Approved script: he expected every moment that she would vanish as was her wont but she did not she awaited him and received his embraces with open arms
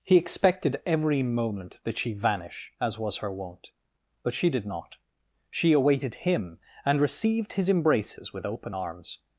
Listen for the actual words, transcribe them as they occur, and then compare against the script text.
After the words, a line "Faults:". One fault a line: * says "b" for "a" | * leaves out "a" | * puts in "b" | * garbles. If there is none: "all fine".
he expected every moment that she vanish as was her wont but she did not she awaited him and received his embraces with open arms
Faults:
* leaves out "would"